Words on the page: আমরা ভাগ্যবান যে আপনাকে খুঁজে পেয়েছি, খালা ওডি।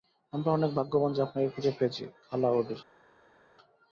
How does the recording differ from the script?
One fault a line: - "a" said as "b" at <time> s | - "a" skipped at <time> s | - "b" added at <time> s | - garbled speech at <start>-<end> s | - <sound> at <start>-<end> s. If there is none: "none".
- "অনেক" added at 0.5 s